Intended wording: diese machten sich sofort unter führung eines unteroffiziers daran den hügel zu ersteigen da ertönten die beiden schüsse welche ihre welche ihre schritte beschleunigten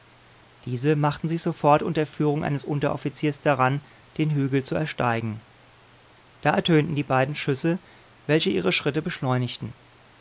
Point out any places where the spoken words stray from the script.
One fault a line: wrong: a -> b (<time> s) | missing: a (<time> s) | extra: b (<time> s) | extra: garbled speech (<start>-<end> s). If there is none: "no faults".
missing: welche ihre (8.7 s)